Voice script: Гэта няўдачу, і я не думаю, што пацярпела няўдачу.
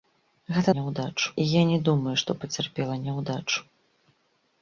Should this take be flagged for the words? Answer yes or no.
no